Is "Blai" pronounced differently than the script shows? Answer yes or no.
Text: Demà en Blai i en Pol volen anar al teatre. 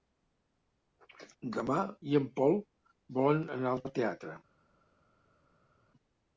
yes